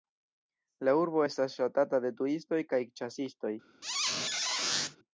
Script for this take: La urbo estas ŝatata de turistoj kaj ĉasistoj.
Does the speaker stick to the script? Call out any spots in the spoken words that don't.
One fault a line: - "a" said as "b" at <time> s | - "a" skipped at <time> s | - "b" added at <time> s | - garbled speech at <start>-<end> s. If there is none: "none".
none